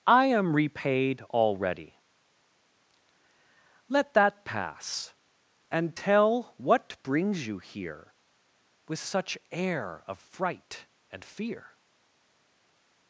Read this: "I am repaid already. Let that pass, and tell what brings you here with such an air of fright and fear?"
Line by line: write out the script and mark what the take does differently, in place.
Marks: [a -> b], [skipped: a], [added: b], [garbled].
"I am repaid already. Let that pass, and tell what brings you here with such [skipped: an] air of fright and fear?"